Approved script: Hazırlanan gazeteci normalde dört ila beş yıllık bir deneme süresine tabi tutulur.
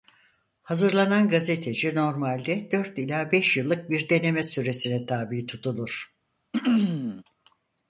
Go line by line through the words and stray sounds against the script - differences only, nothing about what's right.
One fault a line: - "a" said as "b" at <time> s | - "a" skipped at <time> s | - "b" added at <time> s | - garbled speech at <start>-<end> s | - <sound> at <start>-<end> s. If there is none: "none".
- throat clearing at 6.5-7.2 s